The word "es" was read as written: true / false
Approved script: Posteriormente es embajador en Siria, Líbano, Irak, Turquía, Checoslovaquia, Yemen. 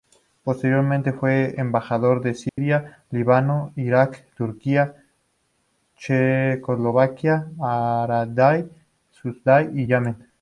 false